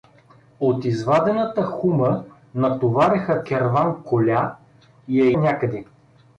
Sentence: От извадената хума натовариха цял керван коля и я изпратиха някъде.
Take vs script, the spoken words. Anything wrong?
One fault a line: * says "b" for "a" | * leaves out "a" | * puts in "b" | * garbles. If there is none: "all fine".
* leaves out "цял"
* leaves out "изпратиха"